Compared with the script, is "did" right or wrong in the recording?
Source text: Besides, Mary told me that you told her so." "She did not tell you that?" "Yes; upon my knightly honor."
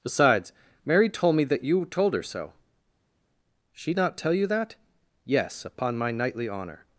wrong